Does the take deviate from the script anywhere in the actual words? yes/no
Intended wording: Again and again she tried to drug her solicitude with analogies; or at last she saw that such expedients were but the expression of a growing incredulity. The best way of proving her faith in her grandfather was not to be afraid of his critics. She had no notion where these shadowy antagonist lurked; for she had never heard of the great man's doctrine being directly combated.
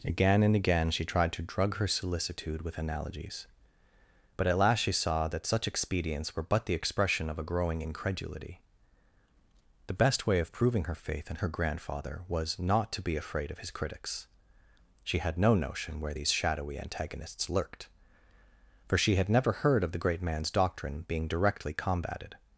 yes